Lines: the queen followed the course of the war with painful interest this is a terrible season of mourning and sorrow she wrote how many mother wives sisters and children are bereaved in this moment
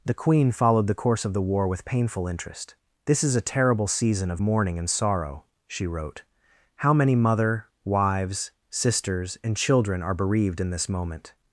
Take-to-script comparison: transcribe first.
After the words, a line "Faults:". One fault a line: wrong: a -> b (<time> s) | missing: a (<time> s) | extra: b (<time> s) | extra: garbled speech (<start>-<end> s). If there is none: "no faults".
the queen followed the course of the war with painful interest this is a terrible season of mourning and sorrow she wrote how many mother wives sisters and children are bereaved in this moment
Faults:
no faults